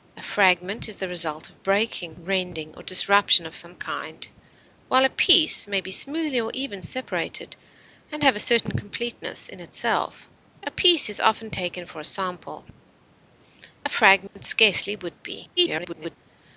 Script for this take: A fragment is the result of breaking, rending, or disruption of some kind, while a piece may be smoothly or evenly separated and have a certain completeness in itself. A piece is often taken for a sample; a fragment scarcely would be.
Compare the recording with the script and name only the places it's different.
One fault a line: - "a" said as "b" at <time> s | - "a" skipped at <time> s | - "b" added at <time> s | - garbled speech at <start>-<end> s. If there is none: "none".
- garbled speech at 15.6-16.2 s